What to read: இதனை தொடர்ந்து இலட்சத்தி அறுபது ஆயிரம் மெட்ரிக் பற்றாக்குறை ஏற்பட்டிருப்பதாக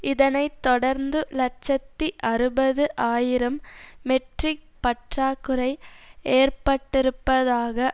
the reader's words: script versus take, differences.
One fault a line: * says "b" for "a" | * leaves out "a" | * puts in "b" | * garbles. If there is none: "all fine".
all fine